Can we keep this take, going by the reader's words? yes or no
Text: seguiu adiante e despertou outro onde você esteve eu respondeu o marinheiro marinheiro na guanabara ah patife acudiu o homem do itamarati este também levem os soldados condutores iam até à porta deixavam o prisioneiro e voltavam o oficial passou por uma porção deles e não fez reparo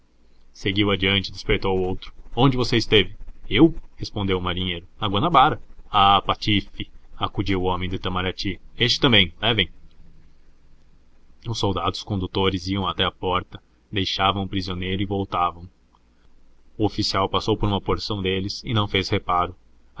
no